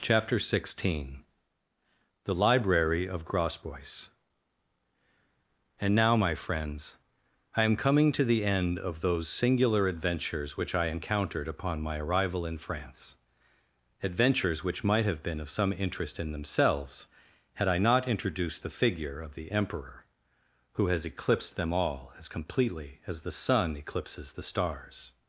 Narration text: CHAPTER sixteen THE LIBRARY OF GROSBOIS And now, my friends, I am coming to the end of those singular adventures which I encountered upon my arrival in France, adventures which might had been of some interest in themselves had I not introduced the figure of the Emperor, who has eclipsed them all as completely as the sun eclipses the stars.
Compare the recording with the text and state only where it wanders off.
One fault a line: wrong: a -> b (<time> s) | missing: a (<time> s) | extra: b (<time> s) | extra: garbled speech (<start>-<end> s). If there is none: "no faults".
wrong: had -> have (15.0 s)